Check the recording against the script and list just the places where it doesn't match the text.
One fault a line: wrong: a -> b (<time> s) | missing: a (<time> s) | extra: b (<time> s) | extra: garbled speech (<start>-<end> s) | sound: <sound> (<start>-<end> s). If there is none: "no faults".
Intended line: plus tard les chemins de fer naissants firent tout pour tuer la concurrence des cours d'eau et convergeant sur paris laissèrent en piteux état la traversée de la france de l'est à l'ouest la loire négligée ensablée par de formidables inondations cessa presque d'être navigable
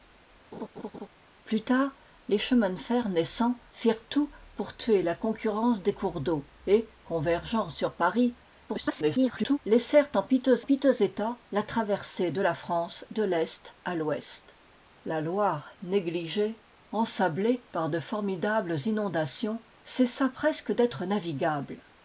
sound: laugh (0.5-1.1 s)
extra: garbled speech (8.7-9.6 s)
extra: piteux (10.6 s)